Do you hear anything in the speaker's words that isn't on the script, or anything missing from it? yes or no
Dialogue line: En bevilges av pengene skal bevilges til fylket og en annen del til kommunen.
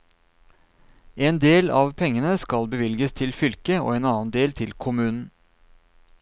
yes